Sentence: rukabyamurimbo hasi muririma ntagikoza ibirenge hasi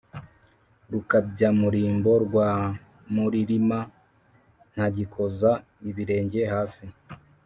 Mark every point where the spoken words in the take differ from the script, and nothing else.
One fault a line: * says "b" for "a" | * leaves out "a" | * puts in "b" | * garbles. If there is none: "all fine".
* says "rwa" for "hasi"